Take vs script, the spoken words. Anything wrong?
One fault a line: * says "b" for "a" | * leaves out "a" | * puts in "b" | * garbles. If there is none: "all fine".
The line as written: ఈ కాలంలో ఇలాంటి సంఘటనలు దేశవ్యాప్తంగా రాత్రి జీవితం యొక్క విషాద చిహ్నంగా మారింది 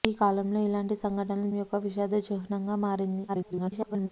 * leaves out "దేశవ్యాప్తంగా రాత్రి జీవితం"
* garbles